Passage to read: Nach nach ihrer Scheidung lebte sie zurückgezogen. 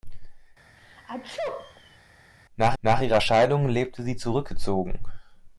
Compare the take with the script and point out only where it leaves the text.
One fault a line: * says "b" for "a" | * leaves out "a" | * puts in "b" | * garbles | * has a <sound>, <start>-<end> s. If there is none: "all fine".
* has a sneeze, 0.8-2.0 s